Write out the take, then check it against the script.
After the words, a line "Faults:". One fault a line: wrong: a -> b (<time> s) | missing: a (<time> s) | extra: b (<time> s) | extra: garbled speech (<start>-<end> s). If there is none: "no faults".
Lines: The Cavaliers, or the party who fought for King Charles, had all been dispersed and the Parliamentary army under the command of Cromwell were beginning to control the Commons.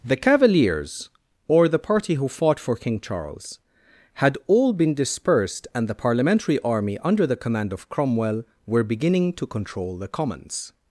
The Cavaliers, or the party who fought for King Charles, had all been dispersed and the Parliamentary army under the command of Cromwell were beginning to control the Commons.
Faults:
no faults